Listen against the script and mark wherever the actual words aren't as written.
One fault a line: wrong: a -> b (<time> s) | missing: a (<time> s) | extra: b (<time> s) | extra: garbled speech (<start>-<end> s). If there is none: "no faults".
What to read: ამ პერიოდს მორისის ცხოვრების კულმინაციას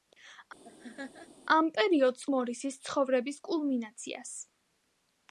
no faults